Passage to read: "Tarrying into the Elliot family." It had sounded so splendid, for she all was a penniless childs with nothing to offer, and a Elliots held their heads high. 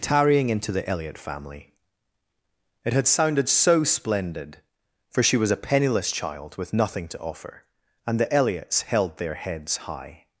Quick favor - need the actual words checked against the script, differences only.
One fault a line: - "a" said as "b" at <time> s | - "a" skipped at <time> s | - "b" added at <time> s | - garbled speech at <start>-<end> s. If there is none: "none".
- "all" skipped at 5.4 s
- "childs" said as "child" at 6.1 s
- "a" said as "the" at 8.2 s